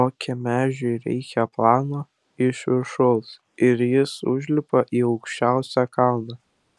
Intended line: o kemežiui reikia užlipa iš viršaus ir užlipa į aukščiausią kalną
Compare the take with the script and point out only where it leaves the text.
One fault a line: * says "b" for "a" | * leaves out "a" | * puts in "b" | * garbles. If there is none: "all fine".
* says "plano" for "užlipa"
* puts in "jis"